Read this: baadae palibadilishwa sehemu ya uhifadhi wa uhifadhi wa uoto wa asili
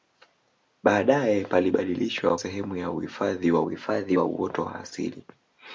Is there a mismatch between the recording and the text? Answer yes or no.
no